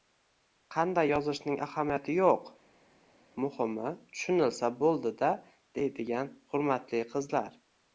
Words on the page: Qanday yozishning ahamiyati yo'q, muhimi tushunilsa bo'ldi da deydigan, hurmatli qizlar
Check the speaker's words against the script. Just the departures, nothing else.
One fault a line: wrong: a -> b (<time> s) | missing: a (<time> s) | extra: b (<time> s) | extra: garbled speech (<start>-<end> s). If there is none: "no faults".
no faults